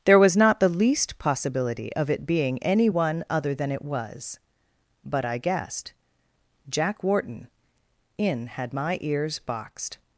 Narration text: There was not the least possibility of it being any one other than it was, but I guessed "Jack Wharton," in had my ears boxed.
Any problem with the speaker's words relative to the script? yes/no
no